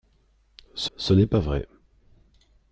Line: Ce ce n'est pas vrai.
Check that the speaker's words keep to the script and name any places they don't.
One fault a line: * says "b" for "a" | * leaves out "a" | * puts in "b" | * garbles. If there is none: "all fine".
all fine